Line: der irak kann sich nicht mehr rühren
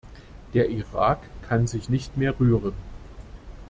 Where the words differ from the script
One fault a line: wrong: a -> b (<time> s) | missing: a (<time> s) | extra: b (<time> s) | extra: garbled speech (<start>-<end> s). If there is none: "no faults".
no faults